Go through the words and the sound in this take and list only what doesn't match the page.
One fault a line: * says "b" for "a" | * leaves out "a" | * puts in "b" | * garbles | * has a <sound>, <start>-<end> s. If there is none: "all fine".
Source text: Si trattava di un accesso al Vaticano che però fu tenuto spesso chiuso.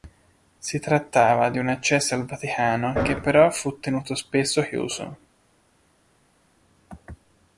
all fine